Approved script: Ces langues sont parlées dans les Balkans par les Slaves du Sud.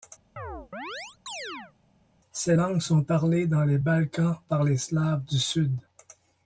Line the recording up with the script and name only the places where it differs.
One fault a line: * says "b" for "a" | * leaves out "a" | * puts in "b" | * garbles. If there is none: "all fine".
all fine